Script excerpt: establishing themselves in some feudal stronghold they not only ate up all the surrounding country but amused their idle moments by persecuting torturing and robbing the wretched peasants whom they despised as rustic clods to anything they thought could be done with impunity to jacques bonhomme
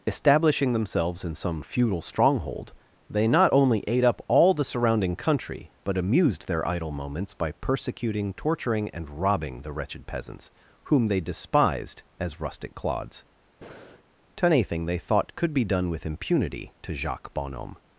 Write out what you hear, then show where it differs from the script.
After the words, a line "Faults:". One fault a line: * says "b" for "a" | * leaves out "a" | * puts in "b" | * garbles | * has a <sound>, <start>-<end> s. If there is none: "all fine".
establishing themselves in some feudal stronghold they not only ate up all the surrounding country but amused their idle moments by persecuting torturing and robbing the wretched peasants whom they despised as rustic clods to anything they thought could be done with impunity to jacques bonhomme
Faults:
* has a breath, 13.6-14.0 s